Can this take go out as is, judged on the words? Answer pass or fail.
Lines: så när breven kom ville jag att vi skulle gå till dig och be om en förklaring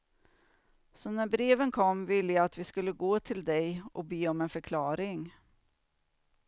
pass